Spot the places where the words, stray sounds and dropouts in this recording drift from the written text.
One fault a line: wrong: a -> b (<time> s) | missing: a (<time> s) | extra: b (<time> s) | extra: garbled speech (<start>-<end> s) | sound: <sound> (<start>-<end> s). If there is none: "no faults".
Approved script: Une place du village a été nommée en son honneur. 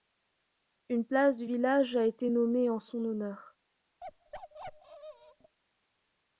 sound: bark (4.0-5.6 s)